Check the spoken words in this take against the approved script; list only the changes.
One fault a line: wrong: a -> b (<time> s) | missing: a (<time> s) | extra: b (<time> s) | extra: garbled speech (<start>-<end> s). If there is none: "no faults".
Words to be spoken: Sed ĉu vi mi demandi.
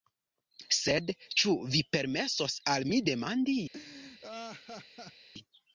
extra: permesos al (2.0 s)